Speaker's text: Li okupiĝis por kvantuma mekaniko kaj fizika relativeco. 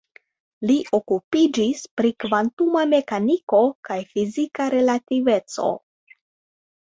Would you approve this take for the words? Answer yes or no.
no